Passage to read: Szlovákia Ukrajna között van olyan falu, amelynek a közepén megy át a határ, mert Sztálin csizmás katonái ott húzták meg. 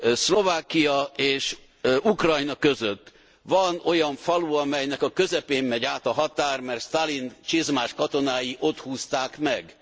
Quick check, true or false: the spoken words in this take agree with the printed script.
false